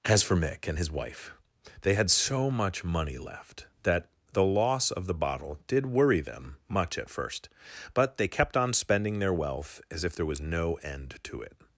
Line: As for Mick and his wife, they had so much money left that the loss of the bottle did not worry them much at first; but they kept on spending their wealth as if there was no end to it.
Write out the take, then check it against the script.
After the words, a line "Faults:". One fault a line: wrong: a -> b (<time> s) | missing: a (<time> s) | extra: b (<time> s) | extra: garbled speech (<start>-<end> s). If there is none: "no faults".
As for Mick and his wife, they had so much money left that the loss of the bottle did worry them much at first; but they kept on spending their wealth as if there was no end to it.
Faults:
missing: not (5.9 s)